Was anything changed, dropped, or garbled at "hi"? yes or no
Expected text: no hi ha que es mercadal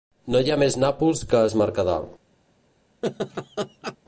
no